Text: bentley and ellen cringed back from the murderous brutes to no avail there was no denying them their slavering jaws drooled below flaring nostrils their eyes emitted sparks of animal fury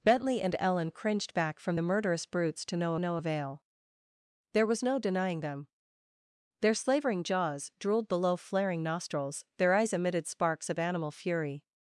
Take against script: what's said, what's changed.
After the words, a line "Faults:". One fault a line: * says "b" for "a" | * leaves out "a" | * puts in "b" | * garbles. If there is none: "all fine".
bentley and ellen cringed back from the murderous brutes to no no avail there was no denying them their slavering jaws drooled below flaring nostrils their eyes emitted sparks of animal fury
Faults:
* puts in "no"